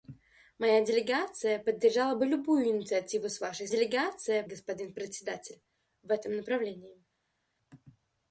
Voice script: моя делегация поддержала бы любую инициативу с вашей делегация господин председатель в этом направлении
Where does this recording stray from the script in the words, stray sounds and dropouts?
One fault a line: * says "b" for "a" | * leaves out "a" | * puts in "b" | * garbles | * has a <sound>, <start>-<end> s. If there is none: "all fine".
all fine